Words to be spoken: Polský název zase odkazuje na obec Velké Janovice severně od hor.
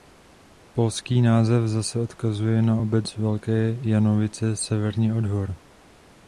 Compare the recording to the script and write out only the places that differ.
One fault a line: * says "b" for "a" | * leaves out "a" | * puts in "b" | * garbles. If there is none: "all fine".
all fine